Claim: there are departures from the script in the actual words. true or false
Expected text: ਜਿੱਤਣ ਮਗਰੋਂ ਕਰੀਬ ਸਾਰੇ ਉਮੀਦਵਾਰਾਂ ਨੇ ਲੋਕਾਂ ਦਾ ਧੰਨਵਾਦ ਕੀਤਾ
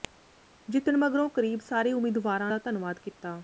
true